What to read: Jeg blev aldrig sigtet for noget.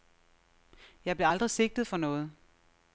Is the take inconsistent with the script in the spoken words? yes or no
no